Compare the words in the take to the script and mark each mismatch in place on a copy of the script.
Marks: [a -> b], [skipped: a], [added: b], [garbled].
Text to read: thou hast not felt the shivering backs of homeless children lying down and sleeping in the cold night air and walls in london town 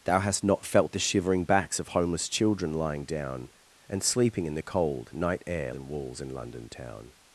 thou hast not felt the shivering backs of homeless children lying down and sleeping in the cold night air and walls in london town